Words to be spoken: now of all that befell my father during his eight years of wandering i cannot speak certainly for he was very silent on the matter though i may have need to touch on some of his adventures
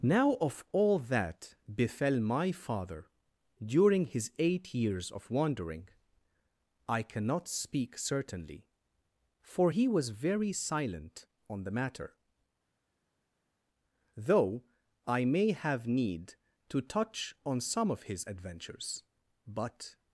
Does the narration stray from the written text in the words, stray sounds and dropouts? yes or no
yes